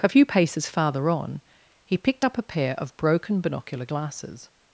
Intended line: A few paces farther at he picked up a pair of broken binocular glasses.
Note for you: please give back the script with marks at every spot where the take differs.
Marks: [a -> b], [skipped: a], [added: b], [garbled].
A few paces farther [at -> on] he picked up a pair of broken binocular glasses.